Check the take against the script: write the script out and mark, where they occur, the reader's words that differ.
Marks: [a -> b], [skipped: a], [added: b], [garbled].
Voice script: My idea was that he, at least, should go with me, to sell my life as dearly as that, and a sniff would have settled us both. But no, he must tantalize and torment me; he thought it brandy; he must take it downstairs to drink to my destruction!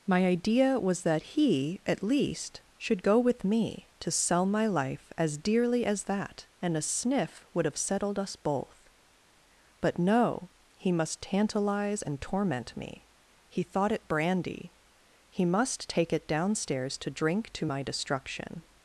My idea was that he, at least, should go with me, to sell my life as dearly as that, and a sniff would have settled us both. But no, he must tantalize and torment me; he thought it brandy; he must take it downstairs to drink to my destruction!